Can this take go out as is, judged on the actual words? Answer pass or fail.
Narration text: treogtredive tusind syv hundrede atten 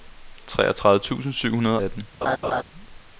pass